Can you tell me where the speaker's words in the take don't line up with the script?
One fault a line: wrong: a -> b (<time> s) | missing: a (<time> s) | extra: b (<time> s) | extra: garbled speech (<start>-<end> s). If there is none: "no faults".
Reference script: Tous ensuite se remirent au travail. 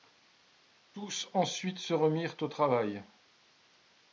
no faults